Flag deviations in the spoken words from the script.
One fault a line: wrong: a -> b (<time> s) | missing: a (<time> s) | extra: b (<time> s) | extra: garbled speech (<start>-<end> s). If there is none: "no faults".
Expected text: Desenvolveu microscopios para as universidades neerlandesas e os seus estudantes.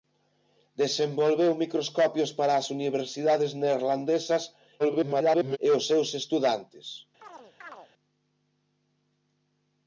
extra: garbled speech (4.8-5.6 s)